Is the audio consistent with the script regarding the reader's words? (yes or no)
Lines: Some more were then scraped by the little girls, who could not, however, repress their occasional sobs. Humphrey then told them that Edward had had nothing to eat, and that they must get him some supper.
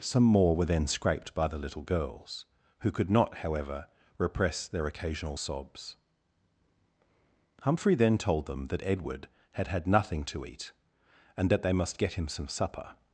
yes